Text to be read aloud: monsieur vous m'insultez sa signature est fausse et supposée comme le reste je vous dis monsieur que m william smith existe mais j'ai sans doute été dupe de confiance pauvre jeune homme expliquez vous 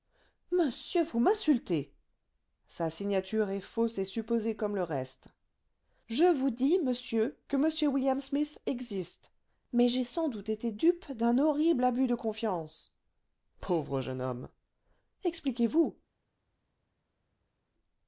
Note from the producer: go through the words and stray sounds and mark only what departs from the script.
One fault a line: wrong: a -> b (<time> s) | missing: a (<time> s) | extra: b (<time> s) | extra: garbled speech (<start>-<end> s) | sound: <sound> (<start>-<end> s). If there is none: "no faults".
extra: d'un horrible abus (11.1 s)